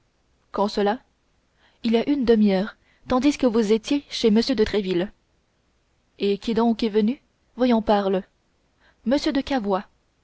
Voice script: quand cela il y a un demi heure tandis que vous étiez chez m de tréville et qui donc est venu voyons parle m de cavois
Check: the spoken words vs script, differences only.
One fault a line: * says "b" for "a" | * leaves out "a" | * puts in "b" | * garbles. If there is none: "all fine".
* says "une" for "un"